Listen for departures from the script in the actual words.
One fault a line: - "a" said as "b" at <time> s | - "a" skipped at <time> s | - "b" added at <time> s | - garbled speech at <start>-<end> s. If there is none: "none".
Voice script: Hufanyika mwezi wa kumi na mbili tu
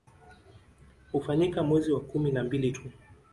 none